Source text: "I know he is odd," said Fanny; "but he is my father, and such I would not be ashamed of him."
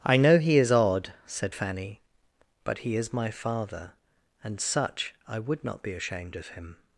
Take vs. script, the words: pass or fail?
pass